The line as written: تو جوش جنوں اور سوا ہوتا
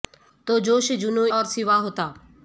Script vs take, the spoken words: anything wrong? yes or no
no